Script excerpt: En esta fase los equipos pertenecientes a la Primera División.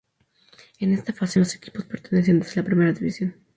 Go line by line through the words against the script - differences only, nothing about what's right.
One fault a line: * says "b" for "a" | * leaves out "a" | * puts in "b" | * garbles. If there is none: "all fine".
all fine